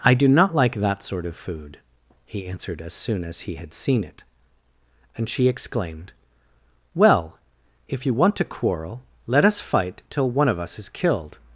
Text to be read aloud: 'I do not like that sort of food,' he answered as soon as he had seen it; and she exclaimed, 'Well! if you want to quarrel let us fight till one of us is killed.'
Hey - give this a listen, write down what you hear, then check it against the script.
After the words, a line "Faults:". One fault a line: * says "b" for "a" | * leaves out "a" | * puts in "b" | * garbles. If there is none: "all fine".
'I do not like that sort of food,' he answered as soon as he had seen it; and she exclaimed, 'Well! if you want to quarrel let us fight till one of us is killed.'
Faults:
all fine